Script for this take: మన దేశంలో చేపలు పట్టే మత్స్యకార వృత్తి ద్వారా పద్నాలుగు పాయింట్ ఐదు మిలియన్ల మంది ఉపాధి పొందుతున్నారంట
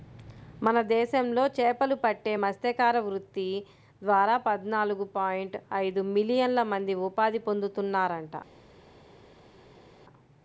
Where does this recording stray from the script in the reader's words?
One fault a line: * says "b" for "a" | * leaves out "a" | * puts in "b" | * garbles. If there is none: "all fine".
all fine